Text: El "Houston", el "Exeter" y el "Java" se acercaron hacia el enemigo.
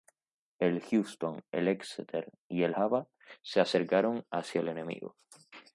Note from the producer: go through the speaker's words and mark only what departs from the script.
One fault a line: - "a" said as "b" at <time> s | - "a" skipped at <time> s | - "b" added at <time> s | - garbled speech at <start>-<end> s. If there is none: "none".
none